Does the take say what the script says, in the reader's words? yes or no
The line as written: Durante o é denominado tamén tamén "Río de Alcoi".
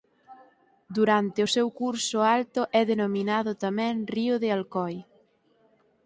no